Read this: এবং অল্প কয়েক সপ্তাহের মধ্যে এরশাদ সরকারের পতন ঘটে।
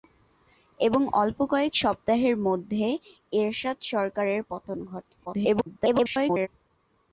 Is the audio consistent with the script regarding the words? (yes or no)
no